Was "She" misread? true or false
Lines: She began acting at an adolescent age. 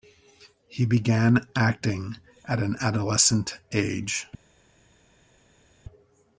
true